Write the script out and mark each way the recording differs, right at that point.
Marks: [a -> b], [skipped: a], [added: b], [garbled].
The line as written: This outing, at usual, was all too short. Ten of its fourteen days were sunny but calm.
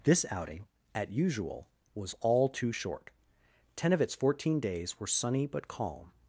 This outing, at usual, was all too short. Ten of its fourteen days were sunny but calm.